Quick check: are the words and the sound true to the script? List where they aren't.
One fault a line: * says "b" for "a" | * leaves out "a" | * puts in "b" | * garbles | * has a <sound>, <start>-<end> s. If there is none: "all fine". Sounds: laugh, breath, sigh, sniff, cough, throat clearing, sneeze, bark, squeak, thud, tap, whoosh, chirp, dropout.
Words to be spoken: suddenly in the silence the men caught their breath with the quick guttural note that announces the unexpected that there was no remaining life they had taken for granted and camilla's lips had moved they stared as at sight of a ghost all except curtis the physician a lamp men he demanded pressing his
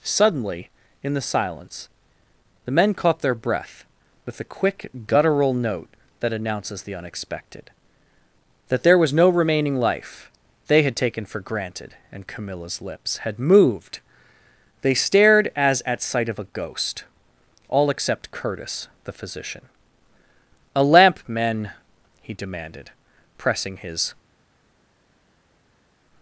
all fine